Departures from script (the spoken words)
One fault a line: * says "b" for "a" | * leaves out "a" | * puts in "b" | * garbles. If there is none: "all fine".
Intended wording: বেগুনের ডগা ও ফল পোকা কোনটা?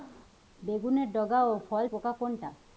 all fine